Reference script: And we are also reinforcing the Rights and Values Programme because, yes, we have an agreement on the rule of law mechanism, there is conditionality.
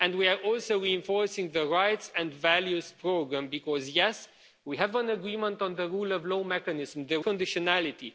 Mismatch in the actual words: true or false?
true